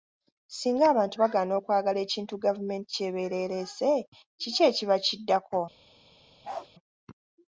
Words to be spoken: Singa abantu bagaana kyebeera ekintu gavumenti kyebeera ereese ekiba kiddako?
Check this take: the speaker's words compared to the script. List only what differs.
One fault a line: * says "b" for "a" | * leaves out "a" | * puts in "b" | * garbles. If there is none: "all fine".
* says "okwagala" for "kyebeera"
* puts in "kiki"